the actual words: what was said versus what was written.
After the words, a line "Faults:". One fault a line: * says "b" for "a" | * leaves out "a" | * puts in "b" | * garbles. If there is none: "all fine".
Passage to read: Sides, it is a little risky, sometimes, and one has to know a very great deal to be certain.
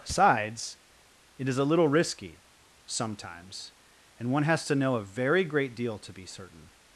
Sides, it is a little risky, sometimes, and one has to know a very great deal to be certain.
Faults:
all fine